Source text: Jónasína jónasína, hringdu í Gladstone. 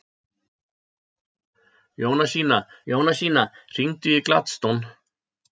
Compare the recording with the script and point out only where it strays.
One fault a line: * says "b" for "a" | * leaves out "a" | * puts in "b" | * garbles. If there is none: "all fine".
all fine